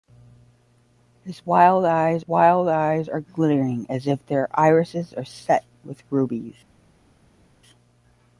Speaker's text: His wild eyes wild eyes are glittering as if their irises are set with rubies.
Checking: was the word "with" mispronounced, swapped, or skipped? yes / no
no